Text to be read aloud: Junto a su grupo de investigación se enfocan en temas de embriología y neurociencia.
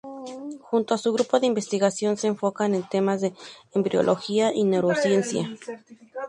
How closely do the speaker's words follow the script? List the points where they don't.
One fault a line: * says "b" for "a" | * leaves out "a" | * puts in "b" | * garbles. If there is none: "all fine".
all fine